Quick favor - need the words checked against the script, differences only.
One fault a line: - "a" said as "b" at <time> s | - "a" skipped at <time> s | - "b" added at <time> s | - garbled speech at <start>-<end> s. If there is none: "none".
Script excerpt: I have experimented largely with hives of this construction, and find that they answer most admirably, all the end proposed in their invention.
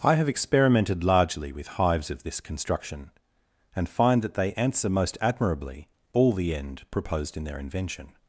none